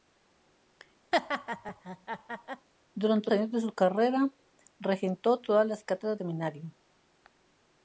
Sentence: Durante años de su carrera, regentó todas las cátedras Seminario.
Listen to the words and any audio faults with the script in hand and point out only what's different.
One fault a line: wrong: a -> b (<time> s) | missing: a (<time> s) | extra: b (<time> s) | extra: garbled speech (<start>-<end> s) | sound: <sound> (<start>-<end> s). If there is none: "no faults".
sound: laugh (1.1-2.7 s)